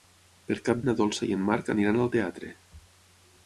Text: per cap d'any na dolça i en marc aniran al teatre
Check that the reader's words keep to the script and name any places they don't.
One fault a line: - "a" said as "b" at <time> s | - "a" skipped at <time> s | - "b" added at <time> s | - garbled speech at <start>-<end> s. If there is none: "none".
- "d'any" skipped at 0.8 s